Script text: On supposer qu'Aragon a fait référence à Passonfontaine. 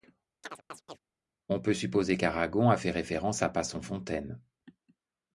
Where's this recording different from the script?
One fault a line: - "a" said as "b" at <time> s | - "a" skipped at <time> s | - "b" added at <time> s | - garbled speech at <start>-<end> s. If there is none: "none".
- "peut" added at 1.6 s